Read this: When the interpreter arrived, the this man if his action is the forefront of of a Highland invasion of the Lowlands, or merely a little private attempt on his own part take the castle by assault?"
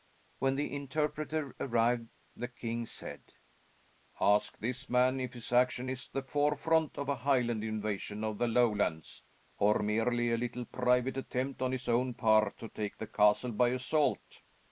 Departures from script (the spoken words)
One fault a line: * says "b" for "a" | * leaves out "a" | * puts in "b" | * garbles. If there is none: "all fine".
* puts in "king said Ask"
* leaves out "of"
* puts in "to"